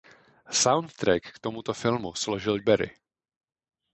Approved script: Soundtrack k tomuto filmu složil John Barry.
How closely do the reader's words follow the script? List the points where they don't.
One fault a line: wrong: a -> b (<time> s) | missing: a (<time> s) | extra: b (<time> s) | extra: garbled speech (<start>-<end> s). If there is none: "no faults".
missing: John (2.6 s)